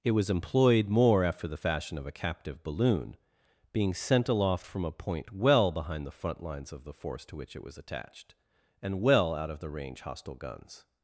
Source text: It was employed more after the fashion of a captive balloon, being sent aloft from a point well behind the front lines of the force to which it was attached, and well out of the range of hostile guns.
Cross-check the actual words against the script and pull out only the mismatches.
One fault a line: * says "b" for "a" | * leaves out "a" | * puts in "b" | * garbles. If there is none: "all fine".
* leaves out "of"